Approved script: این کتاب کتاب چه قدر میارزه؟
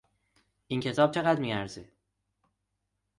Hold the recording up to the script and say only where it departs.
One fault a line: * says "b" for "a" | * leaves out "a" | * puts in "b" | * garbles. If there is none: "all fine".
* leaves out "کتاب"